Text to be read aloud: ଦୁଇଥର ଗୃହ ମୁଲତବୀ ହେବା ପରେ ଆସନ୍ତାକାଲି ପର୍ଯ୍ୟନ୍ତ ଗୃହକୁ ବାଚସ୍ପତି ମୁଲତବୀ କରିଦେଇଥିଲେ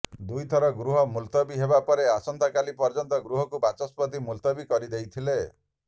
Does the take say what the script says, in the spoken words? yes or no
yes